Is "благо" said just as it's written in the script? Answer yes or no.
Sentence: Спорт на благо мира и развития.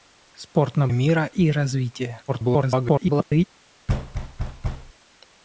no